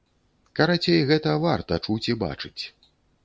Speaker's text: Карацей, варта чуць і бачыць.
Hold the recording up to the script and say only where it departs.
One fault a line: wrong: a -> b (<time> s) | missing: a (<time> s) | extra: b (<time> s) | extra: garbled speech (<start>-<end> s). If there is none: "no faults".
extra: гэта (1.1 s)